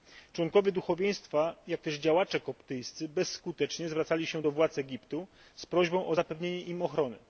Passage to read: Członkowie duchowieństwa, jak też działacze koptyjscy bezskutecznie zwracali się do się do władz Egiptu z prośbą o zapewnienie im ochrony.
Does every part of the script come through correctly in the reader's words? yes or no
no